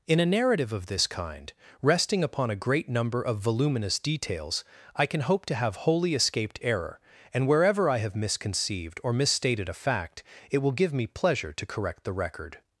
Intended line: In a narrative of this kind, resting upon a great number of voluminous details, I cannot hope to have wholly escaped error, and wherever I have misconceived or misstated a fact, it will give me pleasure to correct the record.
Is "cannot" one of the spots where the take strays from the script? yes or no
yes